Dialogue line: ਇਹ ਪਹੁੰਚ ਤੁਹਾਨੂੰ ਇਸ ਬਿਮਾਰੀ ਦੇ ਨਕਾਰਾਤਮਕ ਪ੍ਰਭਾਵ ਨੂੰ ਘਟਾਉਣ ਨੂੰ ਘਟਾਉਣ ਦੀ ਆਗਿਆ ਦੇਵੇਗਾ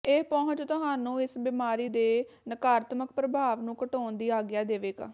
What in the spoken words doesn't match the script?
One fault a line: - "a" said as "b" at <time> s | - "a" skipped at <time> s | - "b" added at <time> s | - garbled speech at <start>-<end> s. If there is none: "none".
- "ਨੂੰ ਘਟਾਉਣ" skipped at 4.2 s